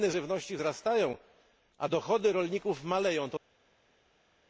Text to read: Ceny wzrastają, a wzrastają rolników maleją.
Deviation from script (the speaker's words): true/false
true